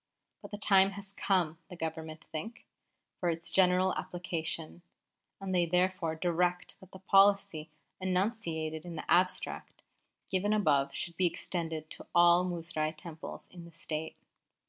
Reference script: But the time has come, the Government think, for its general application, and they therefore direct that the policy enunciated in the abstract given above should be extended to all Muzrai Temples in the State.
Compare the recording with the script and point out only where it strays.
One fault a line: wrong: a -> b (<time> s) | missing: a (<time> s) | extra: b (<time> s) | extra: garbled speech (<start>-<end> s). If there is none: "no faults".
no faults